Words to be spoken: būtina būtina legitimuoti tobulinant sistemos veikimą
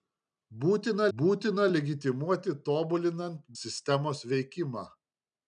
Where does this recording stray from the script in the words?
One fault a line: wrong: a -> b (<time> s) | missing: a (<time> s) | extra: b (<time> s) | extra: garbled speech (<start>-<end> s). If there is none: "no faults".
no faults